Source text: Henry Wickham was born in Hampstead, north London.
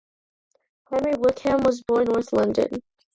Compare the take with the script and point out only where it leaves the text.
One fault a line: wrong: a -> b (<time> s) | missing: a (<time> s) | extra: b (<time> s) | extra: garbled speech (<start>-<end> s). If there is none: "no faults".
missing: in Hampstead (2.1 s)